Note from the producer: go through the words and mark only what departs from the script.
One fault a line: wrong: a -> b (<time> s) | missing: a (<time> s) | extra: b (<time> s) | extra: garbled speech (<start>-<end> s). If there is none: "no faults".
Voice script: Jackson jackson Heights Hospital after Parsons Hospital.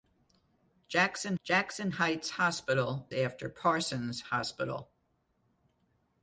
no faults